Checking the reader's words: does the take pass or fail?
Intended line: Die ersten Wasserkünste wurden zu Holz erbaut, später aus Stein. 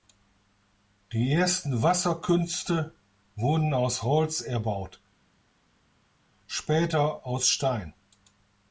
fail